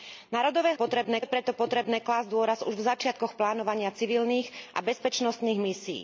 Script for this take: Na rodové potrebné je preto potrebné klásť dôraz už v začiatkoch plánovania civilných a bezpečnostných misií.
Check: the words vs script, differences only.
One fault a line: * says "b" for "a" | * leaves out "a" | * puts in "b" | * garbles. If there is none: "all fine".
all fine